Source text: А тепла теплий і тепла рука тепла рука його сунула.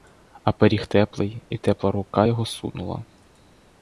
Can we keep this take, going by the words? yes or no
no